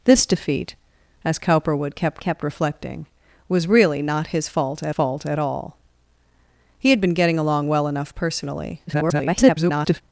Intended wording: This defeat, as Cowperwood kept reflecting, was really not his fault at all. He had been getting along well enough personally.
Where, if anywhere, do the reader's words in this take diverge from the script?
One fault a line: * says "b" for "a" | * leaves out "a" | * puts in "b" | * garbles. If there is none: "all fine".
* puts in "kept"
* puts in "fault at"
* garbles